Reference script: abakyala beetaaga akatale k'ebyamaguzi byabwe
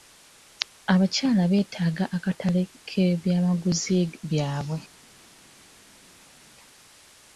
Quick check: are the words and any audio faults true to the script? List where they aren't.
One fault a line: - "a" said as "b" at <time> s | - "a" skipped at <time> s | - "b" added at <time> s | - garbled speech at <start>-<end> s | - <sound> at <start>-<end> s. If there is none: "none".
none